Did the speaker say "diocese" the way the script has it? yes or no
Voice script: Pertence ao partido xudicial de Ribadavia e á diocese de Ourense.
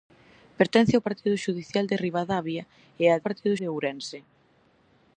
no